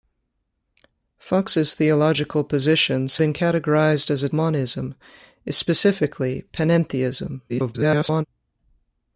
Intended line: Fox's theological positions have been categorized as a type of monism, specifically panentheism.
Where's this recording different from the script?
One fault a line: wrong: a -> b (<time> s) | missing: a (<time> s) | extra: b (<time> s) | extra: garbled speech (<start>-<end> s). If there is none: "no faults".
missing: have (3.2 s)
missing: type of (4.3 s)
extra: garbled speech (7.5-8.2 s)